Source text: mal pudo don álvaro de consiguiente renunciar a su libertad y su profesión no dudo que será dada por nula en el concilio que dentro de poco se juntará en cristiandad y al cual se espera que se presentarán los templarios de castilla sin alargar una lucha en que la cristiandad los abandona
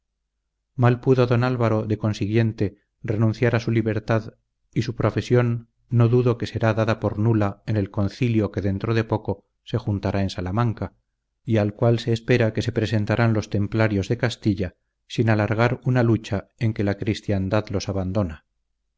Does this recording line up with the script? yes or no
no